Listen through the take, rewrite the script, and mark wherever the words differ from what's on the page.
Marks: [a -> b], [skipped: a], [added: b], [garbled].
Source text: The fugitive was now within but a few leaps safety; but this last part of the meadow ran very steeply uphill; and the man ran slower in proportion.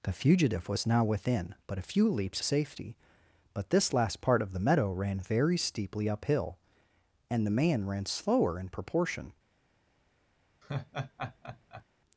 The fugitive was now within but a few leaps safety; but this last part of the meadow ran very steeply uphill; and the man ran slower in proportion.